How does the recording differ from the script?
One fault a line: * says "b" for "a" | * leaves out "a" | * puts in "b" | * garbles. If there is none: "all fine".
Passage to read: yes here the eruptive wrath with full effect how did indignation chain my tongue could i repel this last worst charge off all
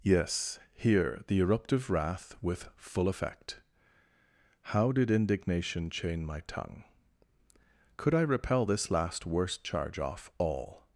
all fine